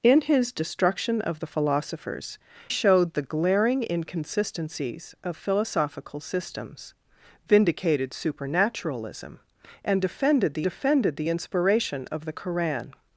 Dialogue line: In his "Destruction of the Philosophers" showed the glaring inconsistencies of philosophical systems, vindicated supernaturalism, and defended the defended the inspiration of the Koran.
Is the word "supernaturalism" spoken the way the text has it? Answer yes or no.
yes